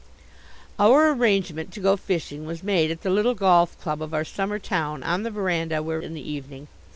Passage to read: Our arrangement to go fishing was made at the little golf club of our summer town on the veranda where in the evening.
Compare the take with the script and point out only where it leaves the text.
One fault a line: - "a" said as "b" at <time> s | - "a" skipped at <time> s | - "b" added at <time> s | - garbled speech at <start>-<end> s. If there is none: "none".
none